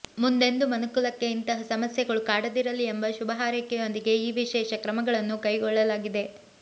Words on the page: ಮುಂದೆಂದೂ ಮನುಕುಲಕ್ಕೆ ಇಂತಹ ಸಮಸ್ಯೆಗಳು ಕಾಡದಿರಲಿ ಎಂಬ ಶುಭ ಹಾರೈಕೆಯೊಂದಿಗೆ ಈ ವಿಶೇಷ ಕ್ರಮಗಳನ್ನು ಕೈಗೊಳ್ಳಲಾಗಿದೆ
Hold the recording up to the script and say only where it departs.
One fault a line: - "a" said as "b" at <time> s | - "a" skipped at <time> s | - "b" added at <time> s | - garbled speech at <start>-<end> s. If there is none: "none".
none